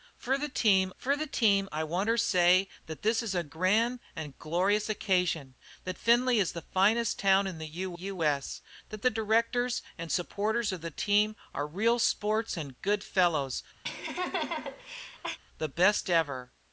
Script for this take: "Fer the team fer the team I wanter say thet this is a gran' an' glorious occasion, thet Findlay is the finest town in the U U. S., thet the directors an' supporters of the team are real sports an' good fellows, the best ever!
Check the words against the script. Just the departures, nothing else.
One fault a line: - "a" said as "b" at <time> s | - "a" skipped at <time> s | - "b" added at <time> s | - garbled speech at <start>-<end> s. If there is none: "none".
none